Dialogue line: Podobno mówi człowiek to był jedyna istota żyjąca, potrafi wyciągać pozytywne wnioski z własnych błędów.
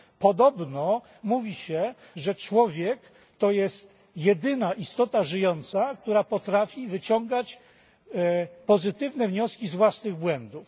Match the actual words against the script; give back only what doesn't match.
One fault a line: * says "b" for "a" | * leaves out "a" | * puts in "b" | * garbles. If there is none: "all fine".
* puts in "się że"
* says "jest" for "był"
* puts in "która"